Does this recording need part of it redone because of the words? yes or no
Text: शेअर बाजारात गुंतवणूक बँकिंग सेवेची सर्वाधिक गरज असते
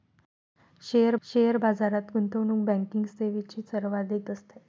yes